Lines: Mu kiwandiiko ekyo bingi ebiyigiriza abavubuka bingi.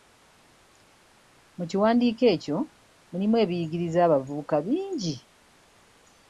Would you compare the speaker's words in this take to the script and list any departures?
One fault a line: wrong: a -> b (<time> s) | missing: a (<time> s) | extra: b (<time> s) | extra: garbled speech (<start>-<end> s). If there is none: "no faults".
wrong: bingi -> mulimu (3.1 s)